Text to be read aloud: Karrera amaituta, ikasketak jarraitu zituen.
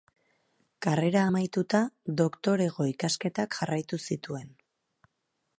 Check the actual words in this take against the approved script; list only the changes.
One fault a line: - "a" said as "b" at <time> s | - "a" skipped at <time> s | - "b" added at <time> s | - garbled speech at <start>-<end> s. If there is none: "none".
- "doktorego" added at 2.2 s